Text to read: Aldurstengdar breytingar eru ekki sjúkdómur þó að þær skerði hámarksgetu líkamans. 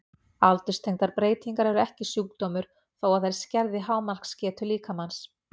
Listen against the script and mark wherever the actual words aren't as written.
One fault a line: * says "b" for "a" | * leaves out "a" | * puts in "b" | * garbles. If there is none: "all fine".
all fine